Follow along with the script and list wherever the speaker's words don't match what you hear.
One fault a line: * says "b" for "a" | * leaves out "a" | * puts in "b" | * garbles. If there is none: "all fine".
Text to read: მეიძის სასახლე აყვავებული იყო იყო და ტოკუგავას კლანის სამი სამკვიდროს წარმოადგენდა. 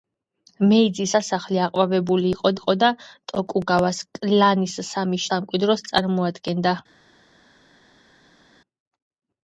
all fine